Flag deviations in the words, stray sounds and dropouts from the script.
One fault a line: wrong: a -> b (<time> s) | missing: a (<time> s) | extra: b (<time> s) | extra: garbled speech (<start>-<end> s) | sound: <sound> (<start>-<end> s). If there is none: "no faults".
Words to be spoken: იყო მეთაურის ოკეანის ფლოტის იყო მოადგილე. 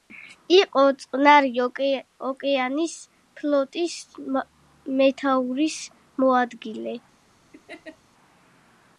wrong: მეთაურის -> წყნარი (1.0 s)
wrong: იყო -> მეთაურის (5.0 s)
sound: laugh (7.5-8.0 s)